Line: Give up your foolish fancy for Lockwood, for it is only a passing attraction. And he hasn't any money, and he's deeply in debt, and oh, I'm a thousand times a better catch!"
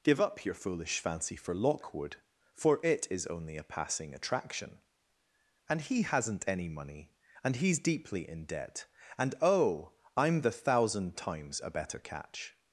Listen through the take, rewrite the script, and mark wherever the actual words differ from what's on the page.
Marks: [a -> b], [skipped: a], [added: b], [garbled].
Give up your foolish fancy for Lockwood, for it is only a passing attraction. And he hasn't any money, and he's deeply in debt, and oh, I'm [a -> the] thousand times a better catch!"